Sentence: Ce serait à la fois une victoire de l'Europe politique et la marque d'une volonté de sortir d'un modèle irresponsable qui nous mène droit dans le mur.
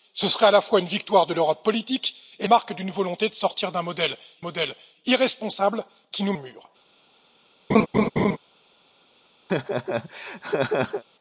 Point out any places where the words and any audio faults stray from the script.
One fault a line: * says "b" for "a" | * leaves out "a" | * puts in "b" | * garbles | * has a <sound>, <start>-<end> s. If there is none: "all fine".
* leaves out "la"
* puts in "modèle"
* leaves out "mène droit dans"
* has a laugh, 7.7-8.4 s
* has a laugh, 9.5-11.0 s